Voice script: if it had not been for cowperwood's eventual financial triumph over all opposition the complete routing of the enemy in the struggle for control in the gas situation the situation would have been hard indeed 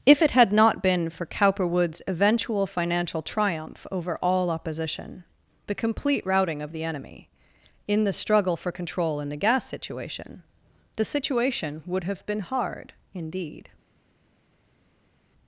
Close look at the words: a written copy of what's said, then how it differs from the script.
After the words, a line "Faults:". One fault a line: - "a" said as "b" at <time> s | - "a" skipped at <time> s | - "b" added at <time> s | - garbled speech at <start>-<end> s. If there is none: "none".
if it had not been for cowperwood's eventual financial triumph over all opposition the complete routing of the enemy in the struggle for control in the gas situation the situation would have been hard indeed
Faults:
none